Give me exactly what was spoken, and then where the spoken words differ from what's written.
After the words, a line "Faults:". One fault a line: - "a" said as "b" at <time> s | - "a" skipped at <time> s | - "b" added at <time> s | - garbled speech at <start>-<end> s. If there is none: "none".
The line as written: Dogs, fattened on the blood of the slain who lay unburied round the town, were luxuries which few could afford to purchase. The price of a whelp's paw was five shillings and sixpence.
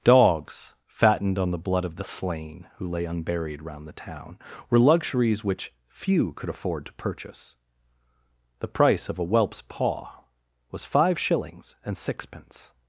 Dogs, fattened on the blood of the slain who lay unburied round the town, were luxuries which few could afford to purchase. The price of a whelp's paw was five shillings and sixpence.
Faults:
none